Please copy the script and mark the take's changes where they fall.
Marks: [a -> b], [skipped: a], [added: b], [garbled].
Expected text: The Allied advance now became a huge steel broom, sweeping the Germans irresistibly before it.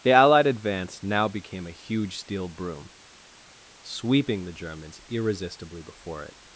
The Allied advance now became a huge steel broom, sweeping the Germans irresistibly before it.